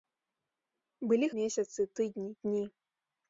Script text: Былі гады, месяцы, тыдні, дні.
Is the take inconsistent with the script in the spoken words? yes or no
yes